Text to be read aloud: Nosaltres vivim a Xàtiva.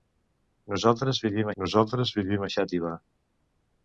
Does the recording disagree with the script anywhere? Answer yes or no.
yes